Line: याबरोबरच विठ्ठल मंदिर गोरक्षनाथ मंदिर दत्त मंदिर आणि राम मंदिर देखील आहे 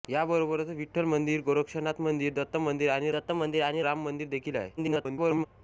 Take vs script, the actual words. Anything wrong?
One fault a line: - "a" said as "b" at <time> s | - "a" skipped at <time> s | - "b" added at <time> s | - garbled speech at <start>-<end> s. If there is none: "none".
- "दत्त मंदिर आणि" added at 3.1 s
- garbled speech at 4.8-5.5 s